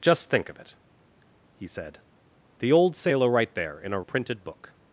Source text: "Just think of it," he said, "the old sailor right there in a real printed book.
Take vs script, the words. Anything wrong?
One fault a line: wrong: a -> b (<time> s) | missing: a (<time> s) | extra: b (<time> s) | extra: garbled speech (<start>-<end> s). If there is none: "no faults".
missing: real (4.0 s)